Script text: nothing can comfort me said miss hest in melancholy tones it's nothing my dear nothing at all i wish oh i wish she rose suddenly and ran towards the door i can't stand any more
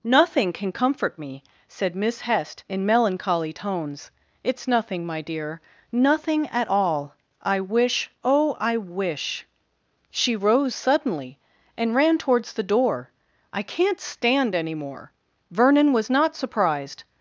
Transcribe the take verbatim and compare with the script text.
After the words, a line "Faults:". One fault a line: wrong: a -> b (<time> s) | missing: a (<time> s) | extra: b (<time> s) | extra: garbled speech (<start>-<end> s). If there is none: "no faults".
nothing can comfort me said miss hest in melancholy tones it's nothing my dear nothing at all i wish oh i wish she rose suddenly and ran towards the door i can't stand any more vernon was not surprised
Faults:
extra: vernon was not surprised (15.5 s)